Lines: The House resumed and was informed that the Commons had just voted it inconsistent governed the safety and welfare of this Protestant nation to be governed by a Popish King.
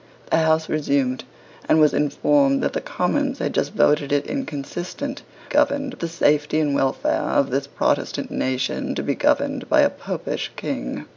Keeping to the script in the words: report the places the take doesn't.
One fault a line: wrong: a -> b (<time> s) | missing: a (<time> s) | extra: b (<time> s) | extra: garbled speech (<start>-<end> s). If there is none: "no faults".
no faults